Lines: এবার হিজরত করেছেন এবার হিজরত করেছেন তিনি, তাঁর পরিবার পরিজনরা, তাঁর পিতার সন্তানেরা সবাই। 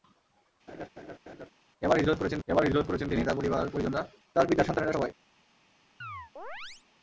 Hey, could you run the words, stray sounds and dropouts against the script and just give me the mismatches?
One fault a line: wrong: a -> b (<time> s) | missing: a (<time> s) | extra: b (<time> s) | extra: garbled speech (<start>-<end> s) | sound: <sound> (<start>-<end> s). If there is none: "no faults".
sound: laugh (0.7-1.5 s)
sound: chirp (6.0-6.8 s)